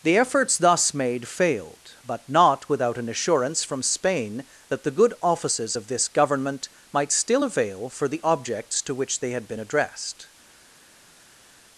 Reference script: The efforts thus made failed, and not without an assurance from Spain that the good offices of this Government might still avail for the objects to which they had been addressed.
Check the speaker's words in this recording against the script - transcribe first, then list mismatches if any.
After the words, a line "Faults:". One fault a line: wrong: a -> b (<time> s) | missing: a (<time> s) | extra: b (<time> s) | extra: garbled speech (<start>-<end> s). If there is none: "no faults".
The efforts thus made failed, but not without an assurance from Spain that the good offices of this Government might still avail for the objects to which they had been addressed.
Faults:
wrong: and -> but (2.0 s)